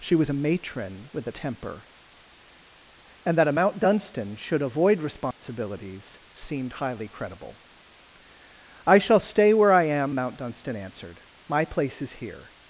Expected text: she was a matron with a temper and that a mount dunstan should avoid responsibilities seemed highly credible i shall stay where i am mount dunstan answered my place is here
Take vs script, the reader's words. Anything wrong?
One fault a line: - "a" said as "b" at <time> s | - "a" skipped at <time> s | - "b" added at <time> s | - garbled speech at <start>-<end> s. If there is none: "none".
none